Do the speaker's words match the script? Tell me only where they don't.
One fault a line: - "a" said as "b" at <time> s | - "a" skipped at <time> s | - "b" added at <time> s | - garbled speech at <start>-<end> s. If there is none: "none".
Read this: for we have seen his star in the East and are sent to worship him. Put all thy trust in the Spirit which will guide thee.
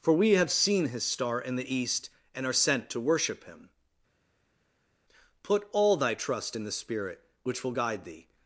none